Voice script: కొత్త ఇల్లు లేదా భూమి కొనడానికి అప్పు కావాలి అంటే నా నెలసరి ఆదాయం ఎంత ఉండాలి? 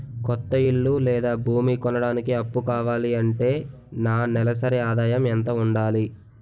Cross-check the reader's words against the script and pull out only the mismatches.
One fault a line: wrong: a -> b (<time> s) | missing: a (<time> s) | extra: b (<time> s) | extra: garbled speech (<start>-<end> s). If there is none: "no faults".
no faults